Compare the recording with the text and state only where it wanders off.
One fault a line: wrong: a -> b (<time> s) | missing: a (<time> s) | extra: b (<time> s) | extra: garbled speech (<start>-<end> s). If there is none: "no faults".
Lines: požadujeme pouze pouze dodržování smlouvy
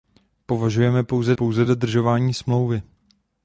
no faults